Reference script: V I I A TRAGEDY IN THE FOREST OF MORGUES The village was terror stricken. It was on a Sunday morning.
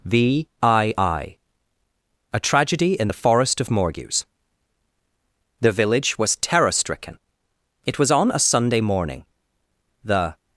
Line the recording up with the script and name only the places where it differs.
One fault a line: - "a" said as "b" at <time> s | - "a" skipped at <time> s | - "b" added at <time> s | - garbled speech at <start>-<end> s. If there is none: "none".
- "The" added at 10.0 s